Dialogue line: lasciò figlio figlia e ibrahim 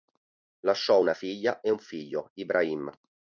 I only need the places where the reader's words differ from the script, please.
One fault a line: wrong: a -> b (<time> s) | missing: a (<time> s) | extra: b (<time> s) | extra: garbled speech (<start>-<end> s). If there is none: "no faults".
wrong: figlio -> una (1.0 s)
extra: un figlio (1.7 s)